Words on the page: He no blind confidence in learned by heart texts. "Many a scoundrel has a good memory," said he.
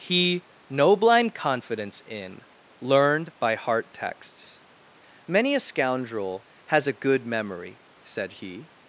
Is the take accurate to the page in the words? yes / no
yes